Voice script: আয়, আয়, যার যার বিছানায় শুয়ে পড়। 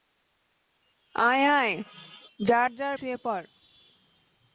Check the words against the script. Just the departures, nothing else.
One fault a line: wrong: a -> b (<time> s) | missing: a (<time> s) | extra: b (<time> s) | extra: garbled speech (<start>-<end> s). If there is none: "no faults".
missing: বিছানায় (3.0 s)